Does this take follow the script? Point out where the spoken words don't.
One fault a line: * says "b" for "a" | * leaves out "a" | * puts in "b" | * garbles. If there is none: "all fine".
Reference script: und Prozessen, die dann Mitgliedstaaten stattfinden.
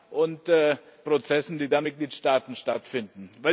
all fine